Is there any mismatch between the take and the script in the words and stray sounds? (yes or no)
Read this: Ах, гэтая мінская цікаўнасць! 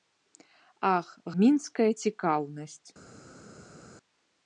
yes